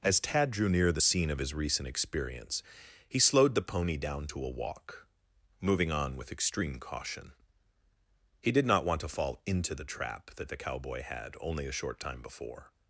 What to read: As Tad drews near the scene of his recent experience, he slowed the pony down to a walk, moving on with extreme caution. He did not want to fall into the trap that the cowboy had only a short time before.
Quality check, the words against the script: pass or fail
fail